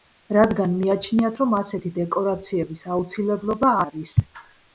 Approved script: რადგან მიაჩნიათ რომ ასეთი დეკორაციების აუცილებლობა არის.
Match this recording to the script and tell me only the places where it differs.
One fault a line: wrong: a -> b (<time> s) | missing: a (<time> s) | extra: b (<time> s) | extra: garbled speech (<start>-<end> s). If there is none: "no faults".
no faults